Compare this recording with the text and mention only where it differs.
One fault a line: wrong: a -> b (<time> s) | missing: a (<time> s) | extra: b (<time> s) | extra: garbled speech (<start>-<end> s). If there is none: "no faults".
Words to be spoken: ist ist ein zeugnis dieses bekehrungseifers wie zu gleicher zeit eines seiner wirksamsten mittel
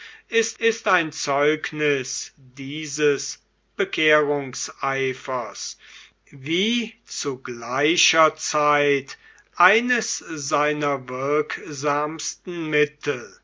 no faults